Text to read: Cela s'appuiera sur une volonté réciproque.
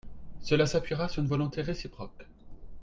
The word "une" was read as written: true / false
true